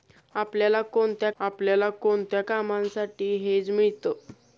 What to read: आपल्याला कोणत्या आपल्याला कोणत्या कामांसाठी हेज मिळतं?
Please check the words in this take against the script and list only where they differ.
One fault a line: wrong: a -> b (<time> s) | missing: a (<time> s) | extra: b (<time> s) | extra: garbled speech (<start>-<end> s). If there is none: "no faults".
no faults